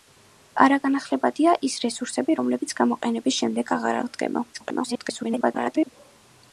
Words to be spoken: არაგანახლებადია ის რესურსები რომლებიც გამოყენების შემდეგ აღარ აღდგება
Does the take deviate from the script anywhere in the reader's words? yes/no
yes